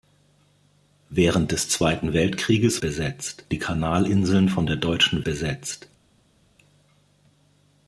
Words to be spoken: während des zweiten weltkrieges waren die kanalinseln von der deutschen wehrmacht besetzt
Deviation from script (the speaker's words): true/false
true